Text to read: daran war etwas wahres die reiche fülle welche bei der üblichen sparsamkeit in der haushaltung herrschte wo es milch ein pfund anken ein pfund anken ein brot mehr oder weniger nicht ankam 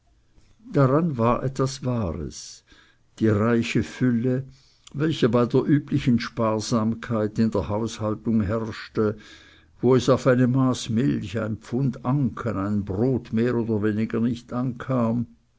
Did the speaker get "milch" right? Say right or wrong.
wrong